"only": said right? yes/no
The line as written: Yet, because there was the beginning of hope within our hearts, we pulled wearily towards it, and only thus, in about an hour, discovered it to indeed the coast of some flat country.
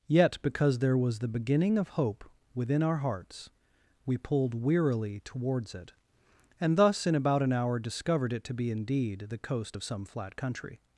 no